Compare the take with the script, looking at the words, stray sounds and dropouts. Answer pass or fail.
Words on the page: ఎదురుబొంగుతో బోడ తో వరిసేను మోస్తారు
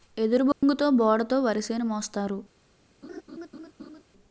fail